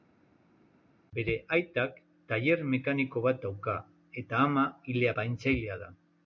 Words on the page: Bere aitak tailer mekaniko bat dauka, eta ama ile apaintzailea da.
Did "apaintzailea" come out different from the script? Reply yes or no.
no